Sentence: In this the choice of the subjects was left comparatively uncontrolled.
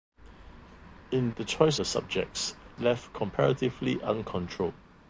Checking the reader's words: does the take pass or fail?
fail